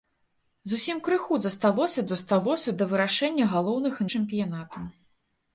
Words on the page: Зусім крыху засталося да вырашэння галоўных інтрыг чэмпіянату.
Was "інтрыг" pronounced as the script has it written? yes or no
no